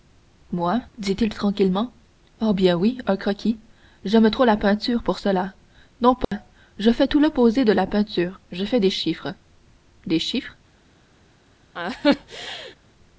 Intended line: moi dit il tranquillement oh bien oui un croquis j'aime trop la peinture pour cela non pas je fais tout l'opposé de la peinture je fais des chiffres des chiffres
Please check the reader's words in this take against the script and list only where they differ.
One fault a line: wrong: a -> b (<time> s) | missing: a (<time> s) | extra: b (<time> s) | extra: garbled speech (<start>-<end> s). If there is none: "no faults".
no faults